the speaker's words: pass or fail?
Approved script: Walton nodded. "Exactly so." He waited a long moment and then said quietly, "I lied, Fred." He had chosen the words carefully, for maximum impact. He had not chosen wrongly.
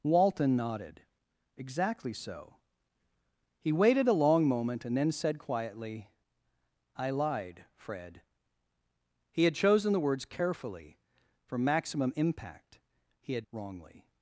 fail